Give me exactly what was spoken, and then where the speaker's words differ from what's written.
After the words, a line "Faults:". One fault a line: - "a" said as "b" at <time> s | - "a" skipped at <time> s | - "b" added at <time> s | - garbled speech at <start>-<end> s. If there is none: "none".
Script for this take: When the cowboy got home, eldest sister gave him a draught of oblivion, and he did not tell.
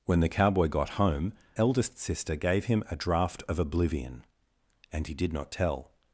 When the cowboy got home, eldest sister gave him a draught of oblivion, and he did not tell.
Faults:
none